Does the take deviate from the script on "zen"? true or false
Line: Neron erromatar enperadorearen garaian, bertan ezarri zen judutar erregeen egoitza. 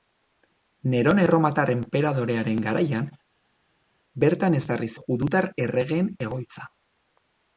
true